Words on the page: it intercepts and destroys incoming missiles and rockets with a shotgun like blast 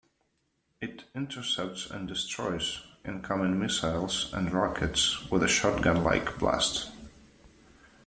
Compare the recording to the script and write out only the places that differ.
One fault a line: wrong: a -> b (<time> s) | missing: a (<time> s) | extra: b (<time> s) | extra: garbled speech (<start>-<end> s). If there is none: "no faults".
no faults